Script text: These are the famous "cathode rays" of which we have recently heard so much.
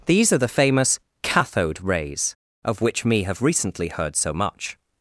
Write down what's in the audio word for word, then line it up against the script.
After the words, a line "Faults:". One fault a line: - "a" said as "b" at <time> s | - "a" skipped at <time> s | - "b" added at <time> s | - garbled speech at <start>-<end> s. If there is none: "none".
These are the famous "cathode rays" of which me have recently heard so much.
Faults:
- "we" said as "me" at 3.0 s